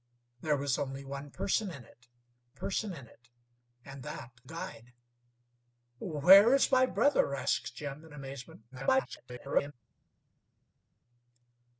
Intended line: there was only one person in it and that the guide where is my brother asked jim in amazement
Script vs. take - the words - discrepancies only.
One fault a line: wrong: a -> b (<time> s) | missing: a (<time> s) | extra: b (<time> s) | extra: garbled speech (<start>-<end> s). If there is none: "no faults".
extra: person in it (2.5 s)
missing: the (4.4 s)
extra: garbled speech (8.7-9.7 s)